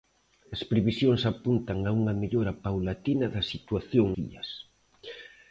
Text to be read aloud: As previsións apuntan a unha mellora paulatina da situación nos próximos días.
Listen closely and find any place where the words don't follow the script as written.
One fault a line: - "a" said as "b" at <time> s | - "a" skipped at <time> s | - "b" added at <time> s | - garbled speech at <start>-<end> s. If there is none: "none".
- "nos próximos" skipped at 4.1 s